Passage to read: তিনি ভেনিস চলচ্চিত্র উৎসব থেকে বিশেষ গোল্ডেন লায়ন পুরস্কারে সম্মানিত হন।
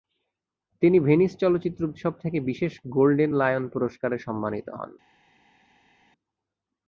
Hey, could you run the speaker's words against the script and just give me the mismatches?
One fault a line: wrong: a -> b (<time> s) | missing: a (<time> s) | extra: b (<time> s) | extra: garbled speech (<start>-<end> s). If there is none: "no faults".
no faults